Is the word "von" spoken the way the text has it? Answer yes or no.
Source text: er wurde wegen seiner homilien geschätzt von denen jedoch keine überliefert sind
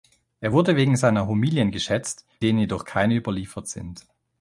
no